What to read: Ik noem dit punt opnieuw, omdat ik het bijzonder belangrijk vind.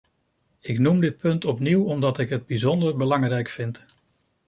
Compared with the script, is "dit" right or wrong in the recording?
right